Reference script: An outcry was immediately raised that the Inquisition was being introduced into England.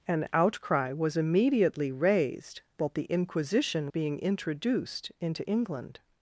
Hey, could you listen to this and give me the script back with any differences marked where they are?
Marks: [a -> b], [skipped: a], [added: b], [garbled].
An outcry was immediately raised that the Inquisition [skipped: was] being introduced into England.